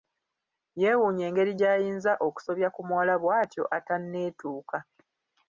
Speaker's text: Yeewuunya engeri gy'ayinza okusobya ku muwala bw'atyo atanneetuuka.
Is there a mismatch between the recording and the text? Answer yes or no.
no